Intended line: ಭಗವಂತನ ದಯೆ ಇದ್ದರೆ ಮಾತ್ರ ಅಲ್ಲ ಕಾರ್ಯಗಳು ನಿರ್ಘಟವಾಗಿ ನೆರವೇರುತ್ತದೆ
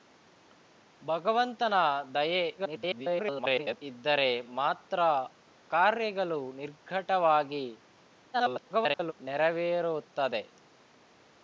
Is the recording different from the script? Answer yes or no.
yes